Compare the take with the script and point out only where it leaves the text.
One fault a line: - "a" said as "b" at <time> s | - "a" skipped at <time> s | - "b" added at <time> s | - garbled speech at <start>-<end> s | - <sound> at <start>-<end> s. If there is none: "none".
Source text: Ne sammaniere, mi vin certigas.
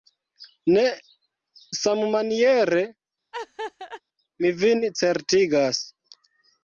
- laugh at 3.3-4.0 s